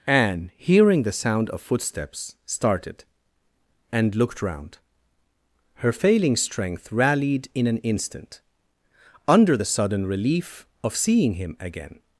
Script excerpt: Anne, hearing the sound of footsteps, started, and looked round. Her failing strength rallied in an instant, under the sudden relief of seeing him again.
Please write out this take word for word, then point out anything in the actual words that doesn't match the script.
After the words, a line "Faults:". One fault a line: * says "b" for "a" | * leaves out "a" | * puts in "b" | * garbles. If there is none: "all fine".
Anne, hearing the sound of footsteps, started, and looked round. Her failing strength rallied in an instant, under the sudden relief of seeing him again.
Faults:
all fine